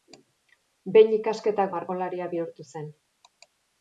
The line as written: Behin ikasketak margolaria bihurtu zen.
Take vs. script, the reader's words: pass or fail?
pass